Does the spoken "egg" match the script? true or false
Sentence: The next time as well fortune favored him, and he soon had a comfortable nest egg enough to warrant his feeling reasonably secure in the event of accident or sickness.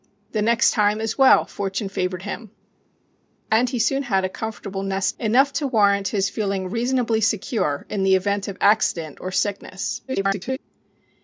false